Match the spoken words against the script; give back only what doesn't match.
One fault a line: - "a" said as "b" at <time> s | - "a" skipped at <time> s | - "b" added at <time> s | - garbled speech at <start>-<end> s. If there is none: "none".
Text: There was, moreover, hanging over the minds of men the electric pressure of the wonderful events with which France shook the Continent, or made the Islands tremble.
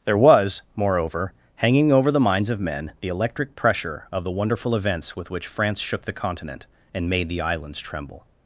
- "or" said as "and" at 6.9 s